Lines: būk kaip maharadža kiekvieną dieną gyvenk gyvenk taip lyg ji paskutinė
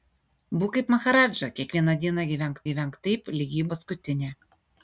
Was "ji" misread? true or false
false